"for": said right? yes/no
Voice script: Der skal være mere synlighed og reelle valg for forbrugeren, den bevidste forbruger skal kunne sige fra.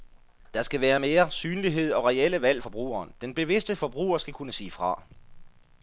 no